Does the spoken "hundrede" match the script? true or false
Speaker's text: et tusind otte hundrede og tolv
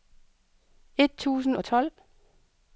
false